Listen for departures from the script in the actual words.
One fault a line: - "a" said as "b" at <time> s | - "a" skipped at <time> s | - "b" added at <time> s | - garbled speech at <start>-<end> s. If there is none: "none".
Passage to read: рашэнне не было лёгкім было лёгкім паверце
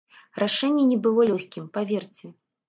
- "было лёгкім" skipped at 1.7 s